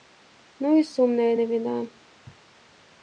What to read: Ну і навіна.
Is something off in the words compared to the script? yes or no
yes